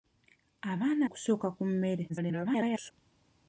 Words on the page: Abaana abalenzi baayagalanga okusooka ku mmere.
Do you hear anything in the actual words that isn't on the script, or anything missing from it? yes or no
yes